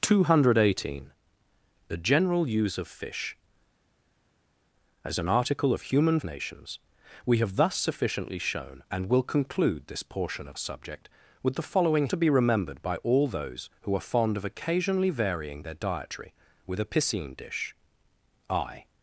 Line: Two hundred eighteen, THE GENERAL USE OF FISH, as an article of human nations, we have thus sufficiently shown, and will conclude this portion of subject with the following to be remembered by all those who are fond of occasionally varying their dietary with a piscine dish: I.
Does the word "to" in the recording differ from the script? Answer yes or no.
no